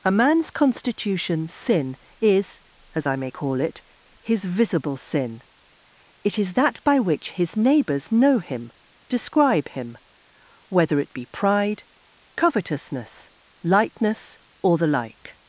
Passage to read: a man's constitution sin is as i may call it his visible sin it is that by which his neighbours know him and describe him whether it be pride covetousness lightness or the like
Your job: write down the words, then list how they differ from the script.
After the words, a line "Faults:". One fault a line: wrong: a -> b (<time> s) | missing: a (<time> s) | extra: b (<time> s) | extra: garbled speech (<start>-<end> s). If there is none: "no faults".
a man's constitution sin is as i may call it his visible sin it is that by which his neighbours know him describe him whether it be pride covetousness lightness or the like
Faults:
missing: and (8.7 s)